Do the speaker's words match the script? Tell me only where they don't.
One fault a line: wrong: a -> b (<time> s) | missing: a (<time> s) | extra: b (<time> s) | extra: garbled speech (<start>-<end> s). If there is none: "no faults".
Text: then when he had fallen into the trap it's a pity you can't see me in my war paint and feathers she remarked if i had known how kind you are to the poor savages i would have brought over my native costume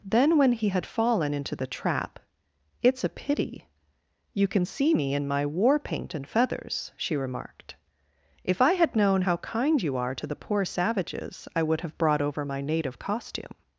wrong: can't -> can (4.5 s)